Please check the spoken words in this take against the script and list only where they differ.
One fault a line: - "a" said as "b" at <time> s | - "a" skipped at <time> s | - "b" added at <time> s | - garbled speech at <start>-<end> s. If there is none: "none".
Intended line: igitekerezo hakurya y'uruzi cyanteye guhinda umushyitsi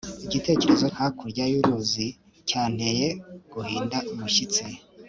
none